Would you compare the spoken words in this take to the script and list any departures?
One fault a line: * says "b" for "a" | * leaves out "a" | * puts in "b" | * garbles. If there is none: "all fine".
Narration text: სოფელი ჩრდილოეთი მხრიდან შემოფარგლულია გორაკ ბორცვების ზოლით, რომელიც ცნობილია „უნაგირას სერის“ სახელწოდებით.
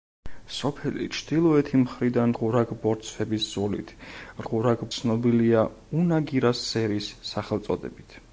* leaves out "შემოფარგლულია"
* says "გორაკ" for "რომელიც"